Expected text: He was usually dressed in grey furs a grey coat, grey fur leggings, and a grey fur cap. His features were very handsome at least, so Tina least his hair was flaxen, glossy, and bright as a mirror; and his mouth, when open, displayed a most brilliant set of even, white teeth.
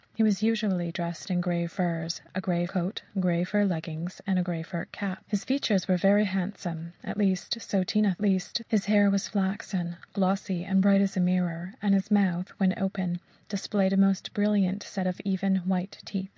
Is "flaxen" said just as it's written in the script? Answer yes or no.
yes